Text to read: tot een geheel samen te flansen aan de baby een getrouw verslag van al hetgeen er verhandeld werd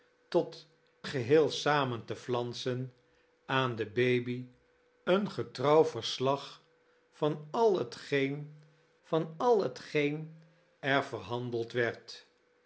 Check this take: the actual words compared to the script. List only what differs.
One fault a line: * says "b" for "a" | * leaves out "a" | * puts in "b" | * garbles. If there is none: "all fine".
* leaves out "een"
* puts in "van al hetgeen"